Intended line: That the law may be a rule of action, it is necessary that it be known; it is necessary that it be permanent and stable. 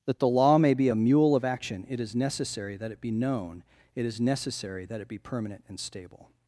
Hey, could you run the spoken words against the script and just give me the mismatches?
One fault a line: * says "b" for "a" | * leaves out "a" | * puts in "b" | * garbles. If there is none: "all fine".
* says "mule" for "rule"